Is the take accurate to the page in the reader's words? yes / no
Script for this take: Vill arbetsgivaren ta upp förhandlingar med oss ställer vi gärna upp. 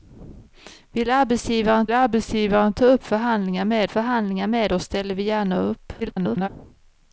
no